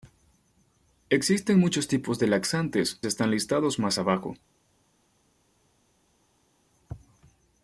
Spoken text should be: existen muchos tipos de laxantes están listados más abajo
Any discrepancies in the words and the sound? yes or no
no